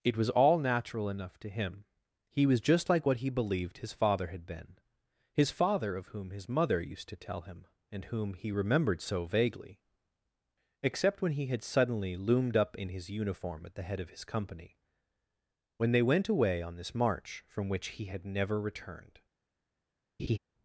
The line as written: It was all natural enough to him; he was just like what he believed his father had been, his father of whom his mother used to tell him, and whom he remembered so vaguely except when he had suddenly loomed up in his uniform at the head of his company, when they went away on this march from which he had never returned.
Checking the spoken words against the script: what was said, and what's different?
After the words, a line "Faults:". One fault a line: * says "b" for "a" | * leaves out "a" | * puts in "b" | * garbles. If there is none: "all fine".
It was all natural enough to him; he was just like what he believed his father had been, his father of whom his mother used to tell him, and whom he remembered so vaguely except when he had suddenly loomed up in his uniform at the head of his company, when they went away on this march from which he had never returned.
Faults:
all fine